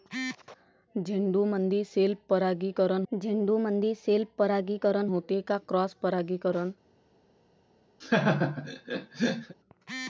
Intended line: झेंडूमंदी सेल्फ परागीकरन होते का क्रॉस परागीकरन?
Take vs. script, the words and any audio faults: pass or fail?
fail